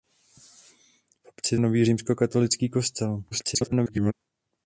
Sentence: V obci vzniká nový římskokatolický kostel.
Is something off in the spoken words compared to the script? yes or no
yes